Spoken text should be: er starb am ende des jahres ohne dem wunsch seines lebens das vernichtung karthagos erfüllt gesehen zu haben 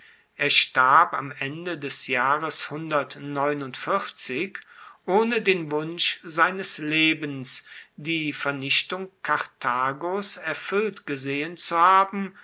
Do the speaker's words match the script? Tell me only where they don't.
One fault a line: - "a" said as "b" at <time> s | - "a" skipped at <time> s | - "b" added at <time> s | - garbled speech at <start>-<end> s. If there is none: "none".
- "dem" said as "den" at 5.4 s
- "das" said as "die" at 8.0 s